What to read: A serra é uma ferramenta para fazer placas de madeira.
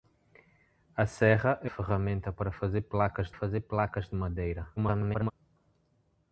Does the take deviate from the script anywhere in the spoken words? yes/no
yes